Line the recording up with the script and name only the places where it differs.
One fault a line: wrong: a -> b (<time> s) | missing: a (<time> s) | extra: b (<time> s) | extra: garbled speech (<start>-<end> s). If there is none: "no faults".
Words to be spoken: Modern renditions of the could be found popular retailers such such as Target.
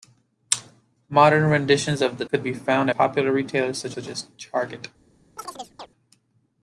no faults